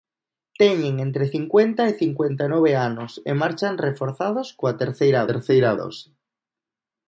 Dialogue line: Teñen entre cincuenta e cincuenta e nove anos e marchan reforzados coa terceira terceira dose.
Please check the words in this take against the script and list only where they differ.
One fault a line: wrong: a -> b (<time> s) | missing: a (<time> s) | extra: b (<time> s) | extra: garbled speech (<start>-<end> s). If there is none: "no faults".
no faults